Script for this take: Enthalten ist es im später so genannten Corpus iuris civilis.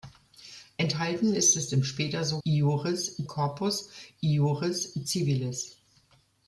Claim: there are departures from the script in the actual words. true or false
true